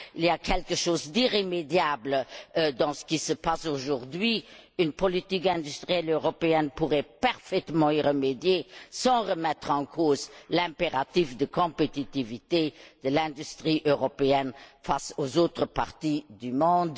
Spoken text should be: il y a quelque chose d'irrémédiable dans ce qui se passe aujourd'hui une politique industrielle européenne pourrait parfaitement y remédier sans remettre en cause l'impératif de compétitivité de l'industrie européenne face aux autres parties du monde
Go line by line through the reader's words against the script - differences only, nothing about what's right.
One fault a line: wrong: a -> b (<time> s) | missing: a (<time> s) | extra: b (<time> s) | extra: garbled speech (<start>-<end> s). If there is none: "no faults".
no faults